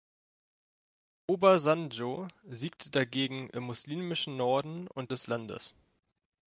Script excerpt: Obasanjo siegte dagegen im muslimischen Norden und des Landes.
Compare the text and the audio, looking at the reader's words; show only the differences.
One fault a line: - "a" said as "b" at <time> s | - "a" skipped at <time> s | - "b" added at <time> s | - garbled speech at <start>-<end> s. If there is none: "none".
none